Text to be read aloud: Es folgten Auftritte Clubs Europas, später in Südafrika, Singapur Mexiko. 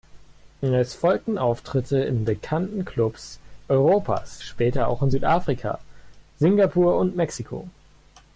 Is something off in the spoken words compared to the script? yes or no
yes